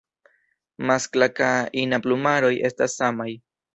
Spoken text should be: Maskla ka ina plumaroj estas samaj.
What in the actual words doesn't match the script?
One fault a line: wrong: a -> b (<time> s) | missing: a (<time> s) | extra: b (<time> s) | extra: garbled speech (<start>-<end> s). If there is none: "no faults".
no faults